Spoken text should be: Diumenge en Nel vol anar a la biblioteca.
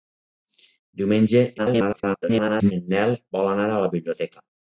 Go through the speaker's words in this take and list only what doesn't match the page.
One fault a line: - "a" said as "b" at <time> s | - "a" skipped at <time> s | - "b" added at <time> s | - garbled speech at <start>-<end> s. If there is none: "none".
- garbled speech at 1.6-2.7 s